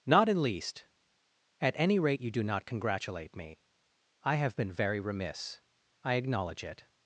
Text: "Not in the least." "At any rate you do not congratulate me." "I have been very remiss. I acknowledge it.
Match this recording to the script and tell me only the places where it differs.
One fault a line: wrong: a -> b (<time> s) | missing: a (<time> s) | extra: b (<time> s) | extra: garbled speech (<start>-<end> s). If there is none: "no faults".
missing: the (0.4 s)